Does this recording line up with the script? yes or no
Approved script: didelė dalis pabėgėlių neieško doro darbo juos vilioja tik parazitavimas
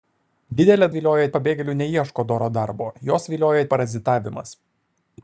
no